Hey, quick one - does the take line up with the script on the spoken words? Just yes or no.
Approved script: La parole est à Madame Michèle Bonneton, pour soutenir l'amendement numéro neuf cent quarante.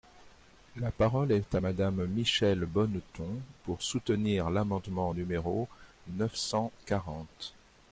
yes